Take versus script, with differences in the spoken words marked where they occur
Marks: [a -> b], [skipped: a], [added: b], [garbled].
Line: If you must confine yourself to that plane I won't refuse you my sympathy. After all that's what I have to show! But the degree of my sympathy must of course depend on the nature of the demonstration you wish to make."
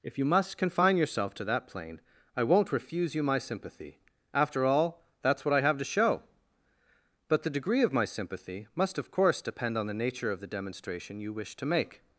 If you must confine yourself to that plane I won't refuse you my sympathy. After all that's what I have to show! But the degree of my sympathy must of course depend on the nature of the demonstration you wish to make."